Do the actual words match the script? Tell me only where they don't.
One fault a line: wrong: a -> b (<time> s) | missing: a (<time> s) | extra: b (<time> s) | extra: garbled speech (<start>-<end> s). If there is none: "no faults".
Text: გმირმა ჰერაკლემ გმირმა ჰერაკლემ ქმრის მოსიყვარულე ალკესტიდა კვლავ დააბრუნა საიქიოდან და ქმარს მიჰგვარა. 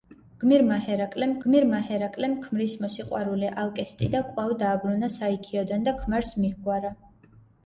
no faults